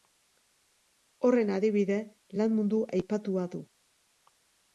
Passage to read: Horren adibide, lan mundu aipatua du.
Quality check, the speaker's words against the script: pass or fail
pass